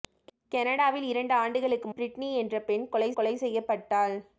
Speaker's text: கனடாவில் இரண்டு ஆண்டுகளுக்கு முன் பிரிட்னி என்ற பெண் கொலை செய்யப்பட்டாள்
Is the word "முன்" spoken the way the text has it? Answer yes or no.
no